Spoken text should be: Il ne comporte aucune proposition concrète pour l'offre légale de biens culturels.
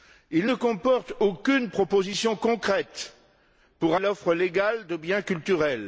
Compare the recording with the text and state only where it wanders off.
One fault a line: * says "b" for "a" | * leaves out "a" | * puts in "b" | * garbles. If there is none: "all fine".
all fine